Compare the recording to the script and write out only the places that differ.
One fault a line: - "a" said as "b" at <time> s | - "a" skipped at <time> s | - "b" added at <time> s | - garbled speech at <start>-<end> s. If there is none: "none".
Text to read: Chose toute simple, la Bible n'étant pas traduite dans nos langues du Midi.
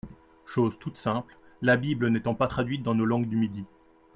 none